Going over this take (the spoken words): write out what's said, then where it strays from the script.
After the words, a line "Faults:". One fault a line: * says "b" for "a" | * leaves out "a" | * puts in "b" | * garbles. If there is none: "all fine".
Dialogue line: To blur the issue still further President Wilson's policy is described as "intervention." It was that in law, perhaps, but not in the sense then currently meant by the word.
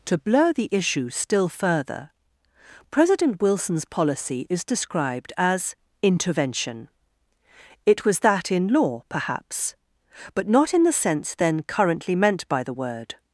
To blur the issue still further President Wilson's policy is described as "intervention." It was that in law, perhaps, but not in the sense then currently meant by the word.
Faults:
all fine